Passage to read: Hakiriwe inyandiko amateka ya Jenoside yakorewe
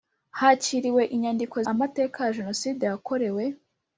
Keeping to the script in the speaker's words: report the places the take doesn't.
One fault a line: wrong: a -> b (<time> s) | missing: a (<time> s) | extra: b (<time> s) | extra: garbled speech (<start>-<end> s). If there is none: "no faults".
no faults